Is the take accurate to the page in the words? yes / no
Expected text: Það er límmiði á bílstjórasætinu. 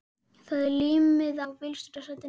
yes